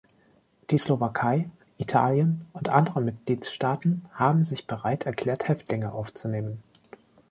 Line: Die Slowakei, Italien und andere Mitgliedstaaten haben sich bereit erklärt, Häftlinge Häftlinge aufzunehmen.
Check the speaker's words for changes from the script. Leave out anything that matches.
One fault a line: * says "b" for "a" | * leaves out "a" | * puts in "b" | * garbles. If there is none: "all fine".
* leaves out "Häftlinge"